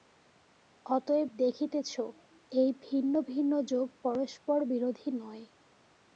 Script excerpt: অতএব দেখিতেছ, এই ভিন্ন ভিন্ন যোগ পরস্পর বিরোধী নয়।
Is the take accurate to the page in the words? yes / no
yes